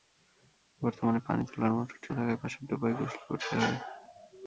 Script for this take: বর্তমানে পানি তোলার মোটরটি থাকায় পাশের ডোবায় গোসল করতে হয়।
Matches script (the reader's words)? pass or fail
pass